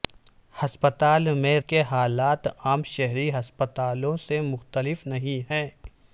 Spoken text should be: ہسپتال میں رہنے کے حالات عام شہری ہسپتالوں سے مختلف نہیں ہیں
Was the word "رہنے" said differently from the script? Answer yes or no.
yes